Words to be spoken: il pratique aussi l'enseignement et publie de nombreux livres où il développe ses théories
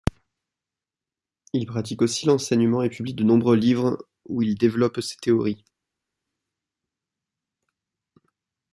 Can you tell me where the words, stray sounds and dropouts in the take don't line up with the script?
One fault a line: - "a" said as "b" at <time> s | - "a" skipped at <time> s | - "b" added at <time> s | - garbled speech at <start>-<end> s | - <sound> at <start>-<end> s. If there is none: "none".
none